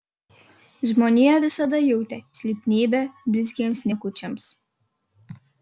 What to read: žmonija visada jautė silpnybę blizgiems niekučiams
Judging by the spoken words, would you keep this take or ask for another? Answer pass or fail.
pass